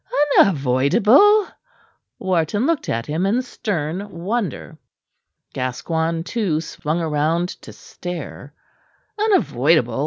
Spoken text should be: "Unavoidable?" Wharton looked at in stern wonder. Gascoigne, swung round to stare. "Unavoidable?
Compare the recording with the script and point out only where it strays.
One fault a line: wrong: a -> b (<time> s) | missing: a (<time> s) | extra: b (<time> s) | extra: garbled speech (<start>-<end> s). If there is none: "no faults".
extra: him (3.0 s)
extra: too (6.2 s)